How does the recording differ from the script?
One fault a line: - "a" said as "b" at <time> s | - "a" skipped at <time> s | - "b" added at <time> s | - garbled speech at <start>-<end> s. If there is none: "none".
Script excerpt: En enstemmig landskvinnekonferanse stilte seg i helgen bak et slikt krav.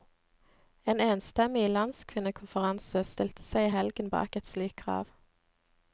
none